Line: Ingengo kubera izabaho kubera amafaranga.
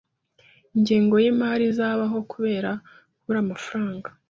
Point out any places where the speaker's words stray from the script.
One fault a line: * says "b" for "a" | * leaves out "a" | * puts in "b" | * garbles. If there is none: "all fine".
* says "yimari" for "kubera"
* puts in "kubura"